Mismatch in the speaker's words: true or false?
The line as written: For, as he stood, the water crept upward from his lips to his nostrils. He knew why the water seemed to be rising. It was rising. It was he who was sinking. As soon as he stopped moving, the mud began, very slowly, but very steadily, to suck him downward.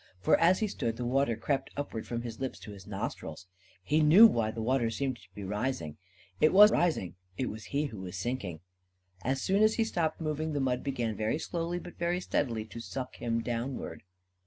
false